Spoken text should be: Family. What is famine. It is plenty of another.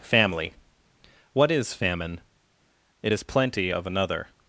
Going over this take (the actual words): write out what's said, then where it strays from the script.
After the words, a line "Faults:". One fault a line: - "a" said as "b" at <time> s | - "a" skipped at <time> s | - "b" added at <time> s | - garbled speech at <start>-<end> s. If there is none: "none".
Family. What is famine. It is plenty of another.
Faults:
none